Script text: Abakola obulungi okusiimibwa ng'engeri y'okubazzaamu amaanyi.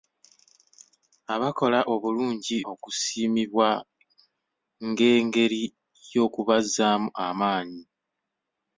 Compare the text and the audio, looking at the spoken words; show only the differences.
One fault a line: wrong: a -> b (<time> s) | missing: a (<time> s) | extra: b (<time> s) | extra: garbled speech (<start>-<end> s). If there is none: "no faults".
no faults